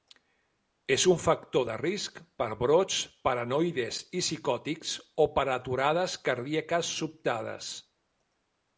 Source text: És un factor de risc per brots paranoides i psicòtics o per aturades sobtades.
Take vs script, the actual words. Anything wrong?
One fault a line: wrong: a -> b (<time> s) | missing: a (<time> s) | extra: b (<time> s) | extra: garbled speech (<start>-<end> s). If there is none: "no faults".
extra: cardíaques (6.3 s)